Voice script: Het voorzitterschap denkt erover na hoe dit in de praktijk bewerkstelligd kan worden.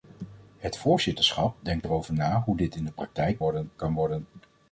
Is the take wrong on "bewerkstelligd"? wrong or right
wrong